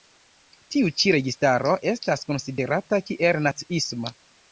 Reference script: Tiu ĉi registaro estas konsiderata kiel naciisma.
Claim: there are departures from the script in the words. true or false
false